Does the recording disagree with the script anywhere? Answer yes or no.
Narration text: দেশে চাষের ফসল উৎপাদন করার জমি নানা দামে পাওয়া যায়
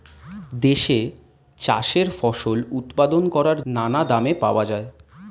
yes